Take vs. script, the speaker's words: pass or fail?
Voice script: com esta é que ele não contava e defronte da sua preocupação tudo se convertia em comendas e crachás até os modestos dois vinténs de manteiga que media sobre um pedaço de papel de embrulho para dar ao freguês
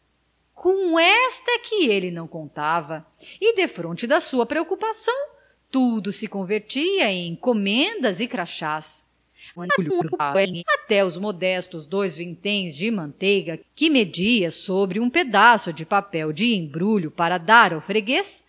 fail